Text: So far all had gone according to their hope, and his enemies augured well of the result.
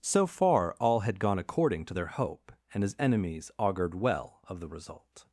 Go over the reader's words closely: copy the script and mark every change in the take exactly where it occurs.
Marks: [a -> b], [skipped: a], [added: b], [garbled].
So far all had gone according to their hope, and his enemies augured well of the result.